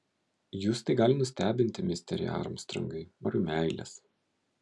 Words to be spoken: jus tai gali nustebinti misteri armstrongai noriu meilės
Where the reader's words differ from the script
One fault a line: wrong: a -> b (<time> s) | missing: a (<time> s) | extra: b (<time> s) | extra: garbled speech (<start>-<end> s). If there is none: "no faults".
no faults